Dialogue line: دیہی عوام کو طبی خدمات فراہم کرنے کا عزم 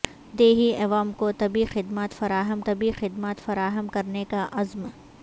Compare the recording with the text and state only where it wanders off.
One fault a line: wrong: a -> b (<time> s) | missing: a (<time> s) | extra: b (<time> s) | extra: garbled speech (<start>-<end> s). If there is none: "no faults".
extra: طبی خدمات فراہم (2.6 s)